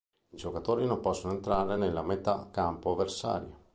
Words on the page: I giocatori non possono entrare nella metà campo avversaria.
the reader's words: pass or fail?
pass